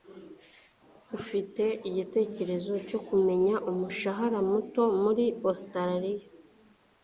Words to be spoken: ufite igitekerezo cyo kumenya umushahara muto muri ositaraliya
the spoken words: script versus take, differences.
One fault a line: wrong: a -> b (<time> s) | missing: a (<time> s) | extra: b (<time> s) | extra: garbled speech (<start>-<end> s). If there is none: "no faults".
no faults